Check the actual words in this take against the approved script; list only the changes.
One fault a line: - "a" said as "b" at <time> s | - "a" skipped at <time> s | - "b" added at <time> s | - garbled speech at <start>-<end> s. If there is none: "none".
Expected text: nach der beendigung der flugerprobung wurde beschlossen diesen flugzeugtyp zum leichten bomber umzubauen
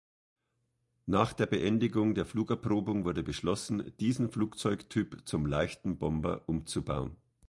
none